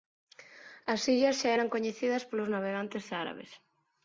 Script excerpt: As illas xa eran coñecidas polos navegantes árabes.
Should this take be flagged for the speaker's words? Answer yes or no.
no